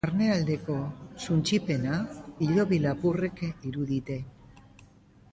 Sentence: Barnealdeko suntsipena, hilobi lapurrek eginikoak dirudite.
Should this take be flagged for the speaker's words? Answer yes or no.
yes